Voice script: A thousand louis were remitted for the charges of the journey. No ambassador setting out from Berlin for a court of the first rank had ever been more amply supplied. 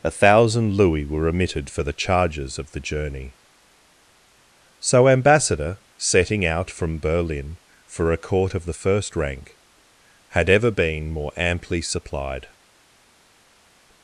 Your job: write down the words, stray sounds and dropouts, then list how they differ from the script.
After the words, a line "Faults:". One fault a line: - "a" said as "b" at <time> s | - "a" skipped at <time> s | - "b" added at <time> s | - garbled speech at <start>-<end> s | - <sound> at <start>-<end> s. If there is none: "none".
A thousand louis were remitted for the charges of the journey. So ambassador setting out from Berlin for a court of the first rank had ever been more amply supplied.
Faults:
- "No" said as "So" at 4.8 s